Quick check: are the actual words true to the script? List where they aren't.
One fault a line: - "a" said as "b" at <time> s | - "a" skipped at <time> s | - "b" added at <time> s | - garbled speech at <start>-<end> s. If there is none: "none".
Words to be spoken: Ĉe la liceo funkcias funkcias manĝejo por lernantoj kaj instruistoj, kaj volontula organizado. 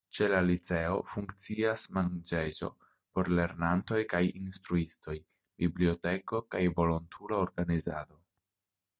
- "funkcias" skipped at 1.8 s
- "biblioteko" added at 5.7 s